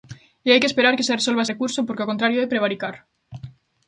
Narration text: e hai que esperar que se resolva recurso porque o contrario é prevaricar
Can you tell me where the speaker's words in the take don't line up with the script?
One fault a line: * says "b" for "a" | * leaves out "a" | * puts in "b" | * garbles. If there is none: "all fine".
all fine